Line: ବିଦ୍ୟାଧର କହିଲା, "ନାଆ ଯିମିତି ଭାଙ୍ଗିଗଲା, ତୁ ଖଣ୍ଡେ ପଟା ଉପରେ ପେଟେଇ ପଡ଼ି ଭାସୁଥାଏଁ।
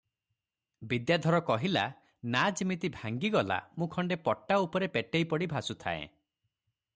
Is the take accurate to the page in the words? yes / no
no